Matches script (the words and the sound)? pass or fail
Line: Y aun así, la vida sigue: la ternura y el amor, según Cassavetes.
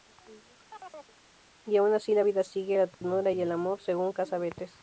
fail